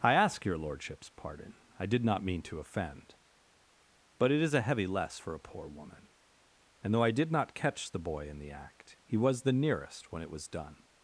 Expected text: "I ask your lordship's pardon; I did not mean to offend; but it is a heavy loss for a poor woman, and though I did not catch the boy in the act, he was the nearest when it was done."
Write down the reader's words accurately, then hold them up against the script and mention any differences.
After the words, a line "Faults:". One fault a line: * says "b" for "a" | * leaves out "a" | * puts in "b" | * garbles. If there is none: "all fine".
"I ask your lordship's pardon; I did not mean to offend; but it is a heavy less for a poor woman, and though I did not catch the boy in the act, he was the nearest when it was done."
Faults:
* says "less" for "loss"